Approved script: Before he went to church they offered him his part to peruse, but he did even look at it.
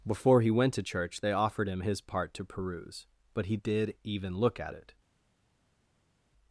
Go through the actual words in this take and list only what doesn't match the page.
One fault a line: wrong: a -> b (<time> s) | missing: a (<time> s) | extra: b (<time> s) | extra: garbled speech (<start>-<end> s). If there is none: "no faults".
no faults